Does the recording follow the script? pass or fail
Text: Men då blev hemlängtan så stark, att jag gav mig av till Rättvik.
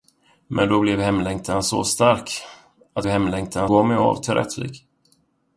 fail